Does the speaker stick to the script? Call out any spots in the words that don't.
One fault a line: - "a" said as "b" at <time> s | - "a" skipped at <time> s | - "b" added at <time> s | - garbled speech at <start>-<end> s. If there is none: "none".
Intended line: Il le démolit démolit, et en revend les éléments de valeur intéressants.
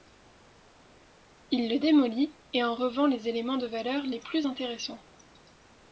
- "démolit" skipped at 2.3 s
- "les plus" added at 4.0 s